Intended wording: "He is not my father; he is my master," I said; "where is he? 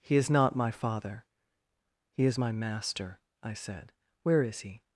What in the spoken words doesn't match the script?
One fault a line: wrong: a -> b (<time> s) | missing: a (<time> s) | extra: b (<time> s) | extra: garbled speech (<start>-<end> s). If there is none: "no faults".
no faults